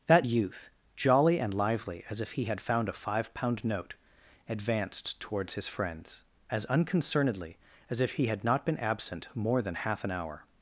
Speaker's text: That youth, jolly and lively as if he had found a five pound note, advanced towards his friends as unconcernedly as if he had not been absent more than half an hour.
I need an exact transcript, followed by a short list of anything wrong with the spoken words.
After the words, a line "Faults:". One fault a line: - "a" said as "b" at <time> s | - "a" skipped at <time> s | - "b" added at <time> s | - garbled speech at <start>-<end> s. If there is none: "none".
That youth, jolly and lively as if he had found a five pound note, advanced towards his friends as unconcernedly as if he had not been absent more than half an hour.
Faults:
none